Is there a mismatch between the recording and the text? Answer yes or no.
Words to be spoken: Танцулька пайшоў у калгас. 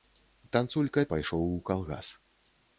no